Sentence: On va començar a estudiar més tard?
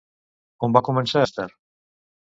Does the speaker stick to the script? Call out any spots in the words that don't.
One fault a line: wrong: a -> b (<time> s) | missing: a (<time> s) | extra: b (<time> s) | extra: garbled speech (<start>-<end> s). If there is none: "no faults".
missing: a estudiar (1.3 s)